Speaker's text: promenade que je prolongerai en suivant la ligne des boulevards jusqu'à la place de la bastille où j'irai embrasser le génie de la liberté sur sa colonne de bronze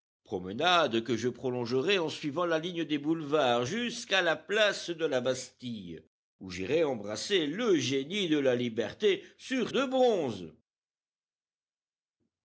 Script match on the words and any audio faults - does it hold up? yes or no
no